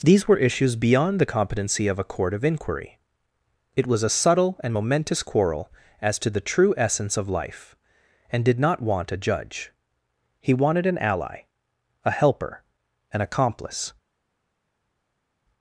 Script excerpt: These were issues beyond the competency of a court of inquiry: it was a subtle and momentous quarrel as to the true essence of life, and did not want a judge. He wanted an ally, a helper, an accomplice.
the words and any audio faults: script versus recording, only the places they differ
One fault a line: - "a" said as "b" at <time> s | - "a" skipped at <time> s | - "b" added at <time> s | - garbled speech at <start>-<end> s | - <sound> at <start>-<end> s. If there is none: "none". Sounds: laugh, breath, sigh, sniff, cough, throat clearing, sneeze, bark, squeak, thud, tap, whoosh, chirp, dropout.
none